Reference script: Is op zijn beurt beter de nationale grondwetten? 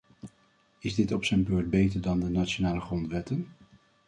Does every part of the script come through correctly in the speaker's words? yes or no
no